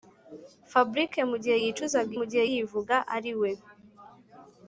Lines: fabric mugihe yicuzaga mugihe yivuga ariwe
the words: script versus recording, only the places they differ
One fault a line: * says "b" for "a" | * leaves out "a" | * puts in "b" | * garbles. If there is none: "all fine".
all fine